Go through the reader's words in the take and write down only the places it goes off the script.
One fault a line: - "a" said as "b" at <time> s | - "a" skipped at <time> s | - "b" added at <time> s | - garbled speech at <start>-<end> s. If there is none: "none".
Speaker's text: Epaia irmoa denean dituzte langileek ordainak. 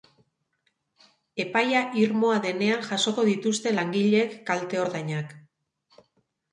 - "jasoko" added at 2.9 s
- "kalte" added at 4.5 s